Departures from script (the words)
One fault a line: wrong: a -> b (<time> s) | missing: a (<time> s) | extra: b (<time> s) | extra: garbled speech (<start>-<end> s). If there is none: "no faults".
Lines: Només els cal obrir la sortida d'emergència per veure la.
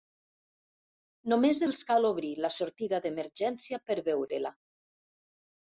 no faults